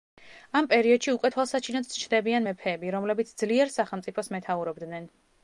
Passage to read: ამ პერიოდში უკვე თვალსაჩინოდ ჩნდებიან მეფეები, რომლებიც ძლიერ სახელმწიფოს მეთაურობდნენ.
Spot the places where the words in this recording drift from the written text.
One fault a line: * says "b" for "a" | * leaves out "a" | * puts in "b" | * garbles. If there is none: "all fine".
all fine